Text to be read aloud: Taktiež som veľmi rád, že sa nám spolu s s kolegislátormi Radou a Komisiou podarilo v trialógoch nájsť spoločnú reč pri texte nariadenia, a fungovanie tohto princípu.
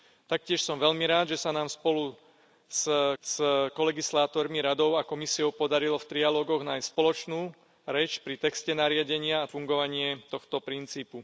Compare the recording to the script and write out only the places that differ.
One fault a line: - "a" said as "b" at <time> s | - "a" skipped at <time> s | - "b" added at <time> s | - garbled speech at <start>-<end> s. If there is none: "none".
none